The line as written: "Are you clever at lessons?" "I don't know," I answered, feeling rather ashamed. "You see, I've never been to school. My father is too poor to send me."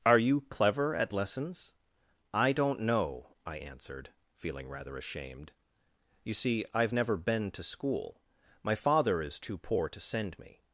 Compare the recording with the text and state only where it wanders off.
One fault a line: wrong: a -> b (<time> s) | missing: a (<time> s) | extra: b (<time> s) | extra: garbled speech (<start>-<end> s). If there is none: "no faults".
no faults